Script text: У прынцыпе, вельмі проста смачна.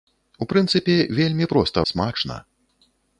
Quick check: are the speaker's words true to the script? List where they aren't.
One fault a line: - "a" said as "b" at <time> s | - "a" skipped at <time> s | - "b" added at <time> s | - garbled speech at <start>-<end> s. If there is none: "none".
none